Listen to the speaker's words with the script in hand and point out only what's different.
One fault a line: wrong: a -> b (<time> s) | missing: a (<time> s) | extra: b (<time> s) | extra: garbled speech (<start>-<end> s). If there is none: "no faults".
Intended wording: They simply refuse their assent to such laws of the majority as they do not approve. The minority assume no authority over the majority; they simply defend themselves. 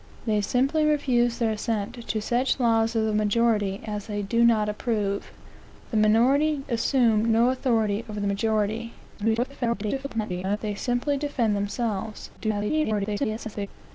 extra: garbled speech (9.2-10.6 s)
extra: garbled speech (12.4-13.7 s)